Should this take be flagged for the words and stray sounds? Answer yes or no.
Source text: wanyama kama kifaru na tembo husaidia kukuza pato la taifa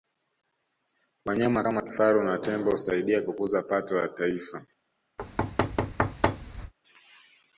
yes